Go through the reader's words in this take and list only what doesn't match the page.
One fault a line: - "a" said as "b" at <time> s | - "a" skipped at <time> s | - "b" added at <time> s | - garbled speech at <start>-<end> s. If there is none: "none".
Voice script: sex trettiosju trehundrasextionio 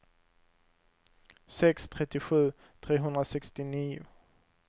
none